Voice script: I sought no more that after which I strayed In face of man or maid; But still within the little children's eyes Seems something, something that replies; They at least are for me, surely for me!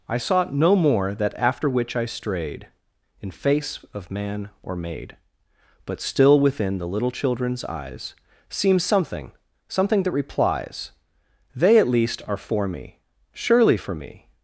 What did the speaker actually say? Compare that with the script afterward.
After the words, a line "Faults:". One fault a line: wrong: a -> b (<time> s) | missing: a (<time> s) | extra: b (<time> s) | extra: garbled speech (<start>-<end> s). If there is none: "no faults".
I sought no more that after which I strayed In face of man or maid; But still within the little children's eyes Seems something, something that replies; They at least are for me, surely for me!
Faults:
no faults